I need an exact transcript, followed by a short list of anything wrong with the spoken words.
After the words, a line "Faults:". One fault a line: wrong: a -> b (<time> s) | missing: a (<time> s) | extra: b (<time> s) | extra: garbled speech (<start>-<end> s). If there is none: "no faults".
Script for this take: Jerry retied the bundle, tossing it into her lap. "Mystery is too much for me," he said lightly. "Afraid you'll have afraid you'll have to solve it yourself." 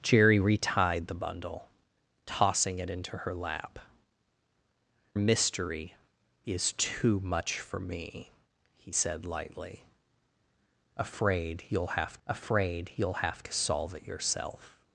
Jerry retied the bundle, tossing it into her lap. "Mystery is too much for me," he said lightly. "Afraid you'll have afraid you'll have to solve it yourself."
Faults:
no faults